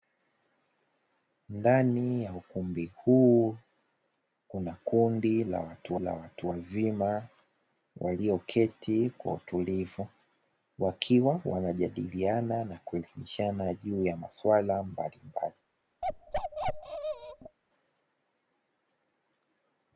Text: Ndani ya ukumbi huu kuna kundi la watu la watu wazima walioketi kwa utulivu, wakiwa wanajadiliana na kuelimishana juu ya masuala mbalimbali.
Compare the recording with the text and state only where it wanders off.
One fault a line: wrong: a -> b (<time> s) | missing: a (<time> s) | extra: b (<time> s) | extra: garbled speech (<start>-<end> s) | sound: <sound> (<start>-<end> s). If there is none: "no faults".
sound: bark (16.0-17.6 s)